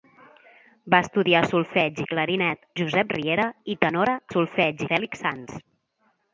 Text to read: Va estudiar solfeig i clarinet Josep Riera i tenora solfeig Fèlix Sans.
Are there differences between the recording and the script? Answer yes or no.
no